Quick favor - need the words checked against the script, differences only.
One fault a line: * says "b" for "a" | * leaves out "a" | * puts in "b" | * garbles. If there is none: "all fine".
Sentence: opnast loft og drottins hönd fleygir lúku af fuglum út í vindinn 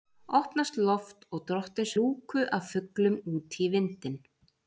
* leaves out "hönd fleygir"